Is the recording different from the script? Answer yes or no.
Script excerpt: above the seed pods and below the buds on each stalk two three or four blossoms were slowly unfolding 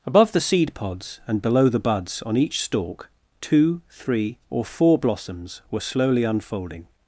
no